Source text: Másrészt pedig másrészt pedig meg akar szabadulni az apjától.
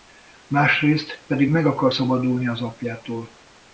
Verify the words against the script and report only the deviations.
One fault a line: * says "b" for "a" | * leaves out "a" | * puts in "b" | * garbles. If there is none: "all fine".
* leaves out "másrészt pedig"